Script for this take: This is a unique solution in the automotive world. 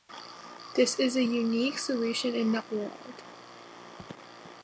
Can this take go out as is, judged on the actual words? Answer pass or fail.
fail